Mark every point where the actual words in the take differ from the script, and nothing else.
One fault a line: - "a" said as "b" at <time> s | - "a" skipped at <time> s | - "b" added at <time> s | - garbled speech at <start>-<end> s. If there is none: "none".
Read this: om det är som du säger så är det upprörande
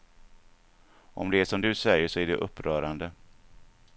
none